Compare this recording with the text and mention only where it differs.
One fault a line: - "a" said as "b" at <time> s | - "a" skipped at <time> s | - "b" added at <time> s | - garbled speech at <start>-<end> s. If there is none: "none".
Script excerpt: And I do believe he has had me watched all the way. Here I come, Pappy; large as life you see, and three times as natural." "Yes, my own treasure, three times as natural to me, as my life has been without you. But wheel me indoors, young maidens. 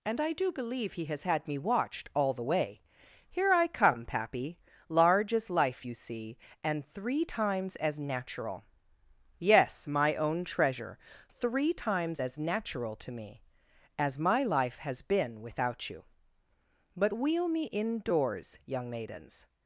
none